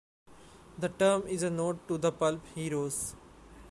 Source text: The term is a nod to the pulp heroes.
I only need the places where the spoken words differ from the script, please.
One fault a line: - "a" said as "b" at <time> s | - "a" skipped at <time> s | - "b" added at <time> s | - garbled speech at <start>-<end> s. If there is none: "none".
none